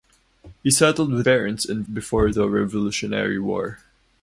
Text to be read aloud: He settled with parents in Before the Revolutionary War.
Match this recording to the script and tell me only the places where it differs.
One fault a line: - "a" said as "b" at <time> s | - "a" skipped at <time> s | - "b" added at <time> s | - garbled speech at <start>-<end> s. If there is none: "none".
none